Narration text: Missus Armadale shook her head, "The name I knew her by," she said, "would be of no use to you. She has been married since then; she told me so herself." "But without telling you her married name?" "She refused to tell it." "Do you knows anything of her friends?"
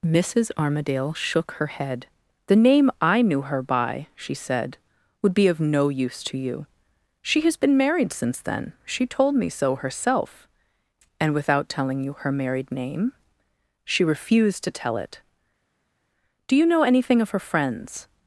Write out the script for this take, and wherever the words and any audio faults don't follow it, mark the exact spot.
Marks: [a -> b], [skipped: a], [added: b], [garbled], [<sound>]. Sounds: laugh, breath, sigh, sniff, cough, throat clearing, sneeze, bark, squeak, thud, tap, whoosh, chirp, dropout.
Missus Armadale shook her head, "The name I knew her by," she said, "would be of no use to you. She has been married since then; she told me so herself." ["But -> And] without telling you her married name?" "She refused to tell it." "Do you [knows -> know] anything of her friends?"